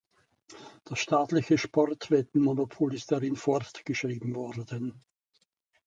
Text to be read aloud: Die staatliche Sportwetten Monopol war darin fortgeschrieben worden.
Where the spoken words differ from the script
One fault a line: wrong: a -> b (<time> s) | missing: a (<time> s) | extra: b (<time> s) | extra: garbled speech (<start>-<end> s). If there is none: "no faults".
wrong: Die -> Das (0.8 s)
wrong: war -> ist (3.0 s)